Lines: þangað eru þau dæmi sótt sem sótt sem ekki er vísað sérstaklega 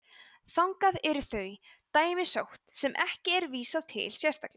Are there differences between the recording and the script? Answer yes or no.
yes